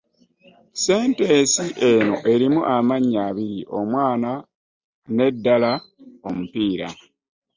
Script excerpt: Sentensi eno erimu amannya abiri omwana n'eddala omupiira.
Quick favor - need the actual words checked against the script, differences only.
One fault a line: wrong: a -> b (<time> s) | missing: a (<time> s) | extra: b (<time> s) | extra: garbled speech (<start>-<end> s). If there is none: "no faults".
no faults